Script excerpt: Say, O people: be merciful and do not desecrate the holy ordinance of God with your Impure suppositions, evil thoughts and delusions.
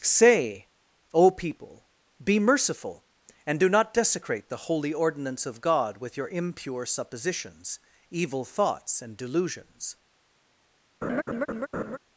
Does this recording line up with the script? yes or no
yes